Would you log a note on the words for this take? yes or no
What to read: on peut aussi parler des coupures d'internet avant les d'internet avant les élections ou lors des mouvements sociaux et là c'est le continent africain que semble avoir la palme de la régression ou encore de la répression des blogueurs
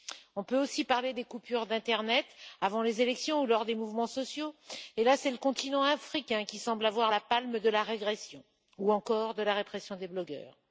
yes